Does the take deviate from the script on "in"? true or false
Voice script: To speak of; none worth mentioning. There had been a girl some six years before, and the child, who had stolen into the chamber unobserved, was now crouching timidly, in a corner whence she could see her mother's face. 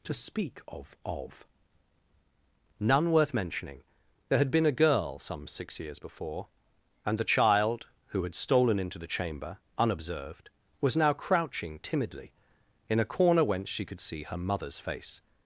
false